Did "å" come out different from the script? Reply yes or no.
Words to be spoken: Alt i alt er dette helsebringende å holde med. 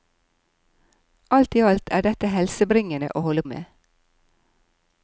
no